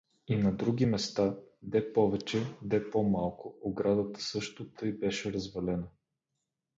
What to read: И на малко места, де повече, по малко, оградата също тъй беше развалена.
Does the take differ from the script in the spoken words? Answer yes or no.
yes